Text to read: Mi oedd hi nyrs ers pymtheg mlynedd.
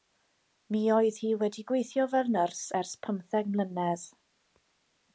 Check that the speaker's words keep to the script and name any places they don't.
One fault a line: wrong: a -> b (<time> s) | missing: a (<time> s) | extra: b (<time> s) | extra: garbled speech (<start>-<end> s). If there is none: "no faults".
extra: wedi gweithio fel (1.4 s)